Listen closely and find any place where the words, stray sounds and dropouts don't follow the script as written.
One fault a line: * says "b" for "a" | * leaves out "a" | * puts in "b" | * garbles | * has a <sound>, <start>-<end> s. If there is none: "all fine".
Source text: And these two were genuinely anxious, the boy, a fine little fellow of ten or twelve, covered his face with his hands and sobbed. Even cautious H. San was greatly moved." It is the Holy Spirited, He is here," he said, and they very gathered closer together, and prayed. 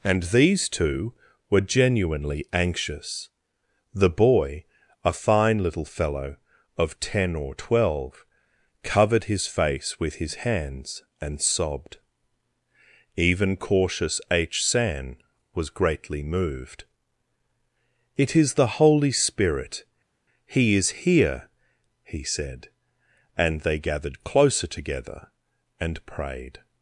* says "Spirit" for "Spirited"
* leaves out "very"